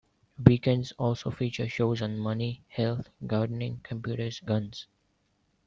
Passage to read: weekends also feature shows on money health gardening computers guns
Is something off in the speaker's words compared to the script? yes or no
no